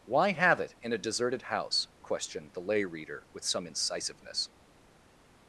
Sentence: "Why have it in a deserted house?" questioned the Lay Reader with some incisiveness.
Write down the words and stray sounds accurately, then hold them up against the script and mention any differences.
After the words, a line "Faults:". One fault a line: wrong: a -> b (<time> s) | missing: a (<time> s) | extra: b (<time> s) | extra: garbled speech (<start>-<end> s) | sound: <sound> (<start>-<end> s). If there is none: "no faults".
"Why have it in a deserted house?" questioned the Lay Reader with some incisiveness.
Faults:
no faults